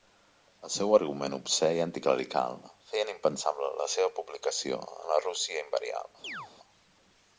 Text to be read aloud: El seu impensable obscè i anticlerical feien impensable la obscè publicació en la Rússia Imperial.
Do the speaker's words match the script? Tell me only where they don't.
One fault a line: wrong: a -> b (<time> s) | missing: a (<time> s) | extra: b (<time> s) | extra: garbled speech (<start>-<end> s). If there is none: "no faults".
wrong: impensable -> argument (1.0 s)
wrong: obscè -> seva (4.0 s)